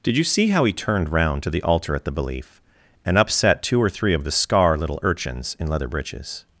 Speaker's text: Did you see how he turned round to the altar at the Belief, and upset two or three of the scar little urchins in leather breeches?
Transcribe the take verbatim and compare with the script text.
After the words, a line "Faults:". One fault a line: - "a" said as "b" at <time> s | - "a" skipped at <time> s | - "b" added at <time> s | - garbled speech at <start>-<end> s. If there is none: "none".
Did you see how he turned round to the altar at the Belief, and upset two or three of the scar little urchins in leather breeches?
Faults:
none